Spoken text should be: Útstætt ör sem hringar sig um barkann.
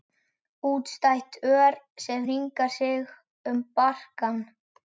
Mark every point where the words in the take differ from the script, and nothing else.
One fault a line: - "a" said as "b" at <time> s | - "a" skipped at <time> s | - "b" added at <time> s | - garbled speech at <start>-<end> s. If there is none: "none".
none